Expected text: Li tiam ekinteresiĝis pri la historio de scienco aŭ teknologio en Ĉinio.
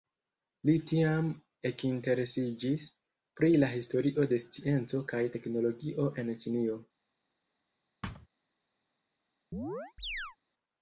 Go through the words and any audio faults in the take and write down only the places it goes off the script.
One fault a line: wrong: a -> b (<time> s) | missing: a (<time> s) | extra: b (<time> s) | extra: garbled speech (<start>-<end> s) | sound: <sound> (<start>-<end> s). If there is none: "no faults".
wrong: aŭ -> kaj (5.1 s)
sound: thud (8.0-8.3 s)
sound: chirp (9.5-10.4 s)